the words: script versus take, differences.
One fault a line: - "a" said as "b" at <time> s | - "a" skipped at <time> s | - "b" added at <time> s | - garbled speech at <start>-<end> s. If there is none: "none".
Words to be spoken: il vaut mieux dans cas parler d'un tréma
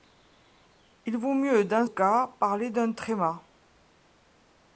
none